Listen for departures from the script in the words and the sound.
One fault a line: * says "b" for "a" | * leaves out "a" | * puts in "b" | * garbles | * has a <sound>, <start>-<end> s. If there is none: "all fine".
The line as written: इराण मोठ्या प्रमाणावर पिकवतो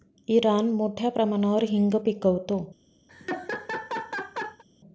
* puts in "हिंग"
* has a laugh, 3.1-4.6 s